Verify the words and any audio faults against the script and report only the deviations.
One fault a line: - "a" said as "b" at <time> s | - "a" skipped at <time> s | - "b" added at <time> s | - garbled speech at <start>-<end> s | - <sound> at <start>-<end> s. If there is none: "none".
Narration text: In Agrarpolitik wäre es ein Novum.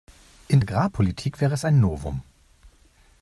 none